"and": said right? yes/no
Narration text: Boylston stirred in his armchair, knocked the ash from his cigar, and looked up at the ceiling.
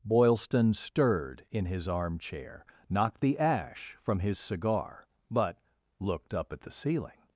no